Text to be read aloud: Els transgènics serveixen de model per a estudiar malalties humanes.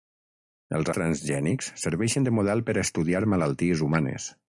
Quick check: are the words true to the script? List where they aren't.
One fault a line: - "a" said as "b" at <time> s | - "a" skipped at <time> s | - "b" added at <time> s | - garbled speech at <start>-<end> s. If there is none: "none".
none